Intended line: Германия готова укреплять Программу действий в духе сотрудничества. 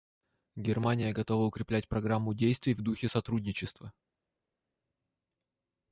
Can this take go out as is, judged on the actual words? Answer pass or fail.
pass